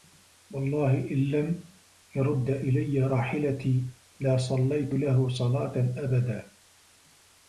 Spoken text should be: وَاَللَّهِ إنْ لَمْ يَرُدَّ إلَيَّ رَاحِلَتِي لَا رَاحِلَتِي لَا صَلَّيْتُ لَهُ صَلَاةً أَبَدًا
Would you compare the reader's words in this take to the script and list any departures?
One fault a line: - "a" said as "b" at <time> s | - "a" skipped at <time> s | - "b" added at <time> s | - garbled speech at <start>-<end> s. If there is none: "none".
- "رَاحِلَتِي لَا" skipped at 4.4 s